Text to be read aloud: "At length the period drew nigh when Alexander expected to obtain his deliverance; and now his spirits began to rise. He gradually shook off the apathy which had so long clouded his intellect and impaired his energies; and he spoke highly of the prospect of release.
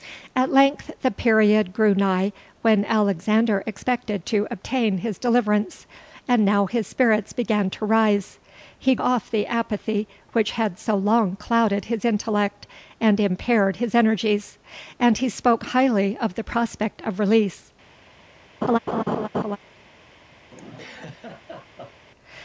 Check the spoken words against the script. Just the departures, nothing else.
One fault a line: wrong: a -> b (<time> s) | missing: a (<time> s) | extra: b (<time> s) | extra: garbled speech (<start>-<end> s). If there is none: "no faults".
missing: gradually shook (8.9 s)